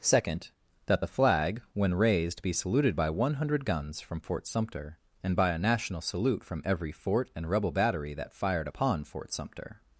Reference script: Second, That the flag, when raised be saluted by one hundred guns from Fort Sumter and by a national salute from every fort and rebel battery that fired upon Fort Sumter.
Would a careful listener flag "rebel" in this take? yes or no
no